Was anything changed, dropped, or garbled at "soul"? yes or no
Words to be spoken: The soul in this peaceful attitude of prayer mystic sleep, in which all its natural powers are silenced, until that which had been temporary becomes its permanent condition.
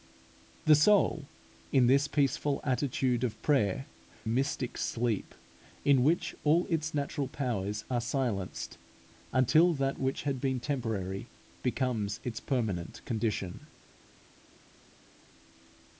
no